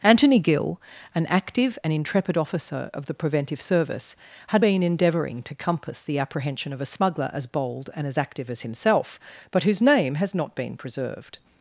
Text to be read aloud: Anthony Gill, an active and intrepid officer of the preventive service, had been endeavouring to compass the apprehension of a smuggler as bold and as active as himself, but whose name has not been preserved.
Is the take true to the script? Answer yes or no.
yes